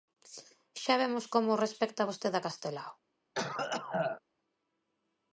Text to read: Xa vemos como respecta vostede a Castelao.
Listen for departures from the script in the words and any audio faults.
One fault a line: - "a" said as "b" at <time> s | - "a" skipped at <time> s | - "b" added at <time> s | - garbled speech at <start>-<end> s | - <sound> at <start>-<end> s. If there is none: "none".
- cough at 3.3-4.2 s